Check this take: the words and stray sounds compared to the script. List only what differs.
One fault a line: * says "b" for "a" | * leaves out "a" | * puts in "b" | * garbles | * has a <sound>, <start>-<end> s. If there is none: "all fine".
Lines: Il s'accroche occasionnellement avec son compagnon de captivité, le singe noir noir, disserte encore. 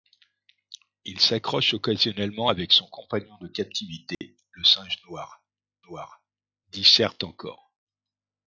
* has a dropout, 4.1-4.2 s